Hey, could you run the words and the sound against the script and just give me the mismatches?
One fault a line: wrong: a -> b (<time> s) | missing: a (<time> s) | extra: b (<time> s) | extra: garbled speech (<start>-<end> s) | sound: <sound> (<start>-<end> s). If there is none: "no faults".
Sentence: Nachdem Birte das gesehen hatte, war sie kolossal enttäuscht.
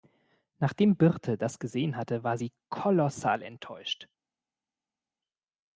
no faults